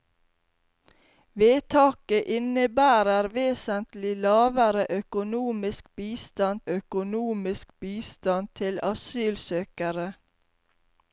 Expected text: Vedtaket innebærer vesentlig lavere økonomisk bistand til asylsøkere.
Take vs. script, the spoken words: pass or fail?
fail